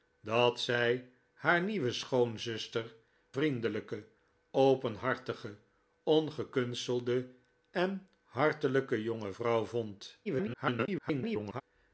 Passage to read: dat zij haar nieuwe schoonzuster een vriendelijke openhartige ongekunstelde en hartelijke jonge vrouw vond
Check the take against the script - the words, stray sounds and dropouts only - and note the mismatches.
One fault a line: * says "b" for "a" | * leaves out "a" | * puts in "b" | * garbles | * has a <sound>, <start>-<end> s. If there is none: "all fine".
* leaves out "een"
* garbles